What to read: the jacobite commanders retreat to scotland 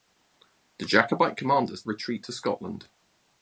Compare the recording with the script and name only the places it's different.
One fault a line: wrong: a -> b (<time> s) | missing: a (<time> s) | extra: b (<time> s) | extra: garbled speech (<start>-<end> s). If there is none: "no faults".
no faults